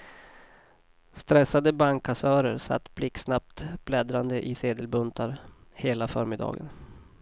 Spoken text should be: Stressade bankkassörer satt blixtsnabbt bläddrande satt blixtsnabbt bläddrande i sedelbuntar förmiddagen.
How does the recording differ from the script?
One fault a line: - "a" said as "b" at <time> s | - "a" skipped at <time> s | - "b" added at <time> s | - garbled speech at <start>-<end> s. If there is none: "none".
- "satt blixtsnabbt bläddrande" skipped at 4.5 s
- "hela" added at 5.7 s